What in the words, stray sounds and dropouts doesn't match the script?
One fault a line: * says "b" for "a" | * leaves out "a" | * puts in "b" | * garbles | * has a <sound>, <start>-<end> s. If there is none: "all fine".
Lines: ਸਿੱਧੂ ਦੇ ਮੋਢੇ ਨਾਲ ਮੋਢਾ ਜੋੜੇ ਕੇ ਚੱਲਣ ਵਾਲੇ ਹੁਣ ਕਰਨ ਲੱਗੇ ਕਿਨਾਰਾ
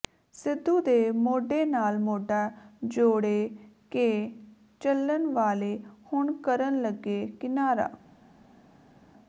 all fine